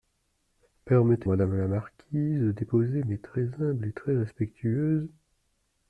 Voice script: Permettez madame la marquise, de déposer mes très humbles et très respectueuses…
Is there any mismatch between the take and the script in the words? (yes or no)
no